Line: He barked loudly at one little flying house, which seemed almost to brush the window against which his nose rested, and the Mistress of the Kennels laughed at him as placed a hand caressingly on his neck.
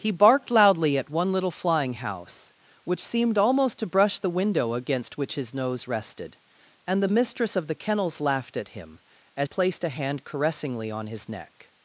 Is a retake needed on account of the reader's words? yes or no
no